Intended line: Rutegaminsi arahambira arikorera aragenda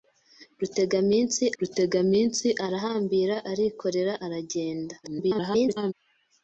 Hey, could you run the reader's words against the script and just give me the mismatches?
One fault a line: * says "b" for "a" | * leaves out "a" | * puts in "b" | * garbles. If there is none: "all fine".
* puts in "rutegaminsi"
* garbles